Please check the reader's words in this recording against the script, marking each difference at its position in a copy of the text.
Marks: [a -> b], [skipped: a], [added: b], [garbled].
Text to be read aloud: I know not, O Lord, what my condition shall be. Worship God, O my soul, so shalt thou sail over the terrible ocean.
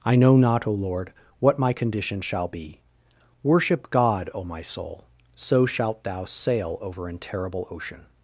I know not, O Lord, what my condition shall be. Worship God, O my soul, so shalt thou sail over [the -> an] terrible ocean.